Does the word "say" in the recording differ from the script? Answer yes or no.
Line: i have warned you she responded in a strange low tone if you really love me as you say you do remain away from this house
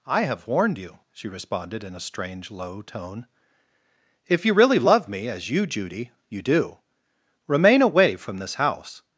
yes